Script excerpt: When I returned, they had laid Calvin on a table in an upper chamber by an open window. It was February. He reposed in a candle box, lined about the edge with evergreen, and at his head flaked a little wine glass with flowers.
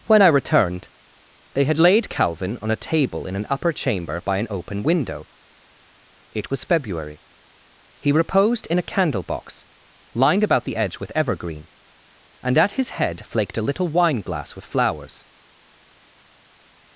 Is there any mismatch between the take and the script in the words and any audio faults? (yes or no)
no